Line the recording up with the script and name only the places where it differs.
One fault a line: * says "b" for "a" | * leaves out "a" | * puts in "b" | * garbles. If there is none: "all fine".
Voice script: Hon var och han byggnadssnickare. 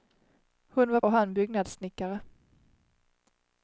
all fine